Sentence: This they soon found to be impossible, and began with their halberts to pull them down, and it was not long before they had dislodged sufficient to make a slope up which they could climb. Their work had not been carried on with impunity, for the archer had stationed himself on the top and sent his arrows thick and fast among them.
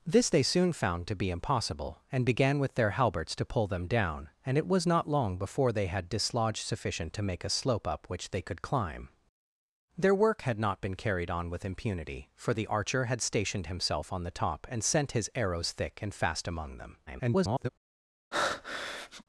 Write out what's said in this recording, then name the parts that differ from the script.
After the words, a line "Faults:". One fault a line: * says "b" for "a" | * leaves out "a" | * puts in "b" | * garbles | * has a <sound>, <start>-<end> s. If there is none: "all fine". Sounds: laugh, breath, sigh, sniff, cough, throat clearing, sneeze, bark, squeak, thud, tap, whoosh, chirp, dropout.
This they soon found to be impossible, and began with their halberts to pull them down, and it was not long before they had dislodged sufficient to make a slope up which they could climb. Their work had not been carried on with impunity, for the archer had stationed himself on the top and sent his arrows thick and fast among them. [garbled]
Faults:
* garbles
* has a breath, 18.3-19.2 s